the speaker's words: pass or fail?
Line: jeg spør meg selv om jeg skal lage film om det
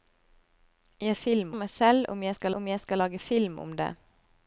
fail